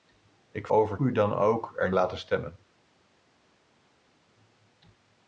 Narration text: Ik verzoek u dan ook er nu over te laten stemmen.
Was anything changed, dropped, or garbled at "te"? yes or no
yes